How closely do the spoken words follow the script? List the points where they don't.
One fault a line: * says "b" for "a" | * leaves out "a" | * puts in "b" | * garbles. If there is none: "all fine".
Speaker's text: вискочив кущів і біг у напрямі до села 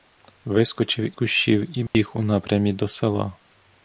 all fine